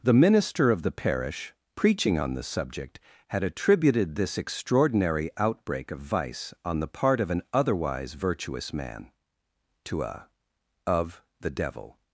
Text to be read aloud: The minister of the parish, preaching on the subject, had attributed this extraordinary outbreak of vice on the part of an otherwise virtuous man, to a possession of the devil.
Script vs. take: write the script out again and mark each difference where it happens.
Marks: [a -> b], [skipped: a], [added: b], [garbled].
The minister of the parish, preaching on the subject, had attributed this extraordinary outbreak of vice on the part of an otherwise virtuous man, to a [skipped: possession] of the devil.